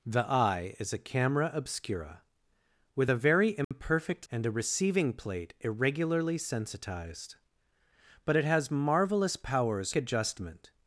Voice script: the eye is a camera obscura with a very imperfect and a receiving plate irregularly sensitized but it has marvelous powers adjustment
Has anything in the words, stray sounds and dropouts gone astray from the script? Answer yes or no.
yes